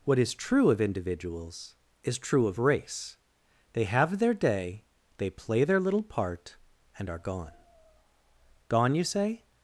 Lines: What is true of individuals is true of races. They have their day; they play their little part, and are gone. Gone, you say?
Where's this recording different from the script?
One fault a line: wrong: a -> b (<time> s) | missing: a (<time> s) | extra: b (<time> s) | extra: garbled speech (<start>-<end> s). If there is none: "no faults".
wrong: races -> race (2.6 s)